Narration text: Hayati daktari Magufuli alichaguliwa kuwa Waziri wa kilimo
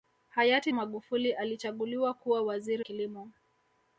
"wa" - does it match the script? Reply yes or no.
no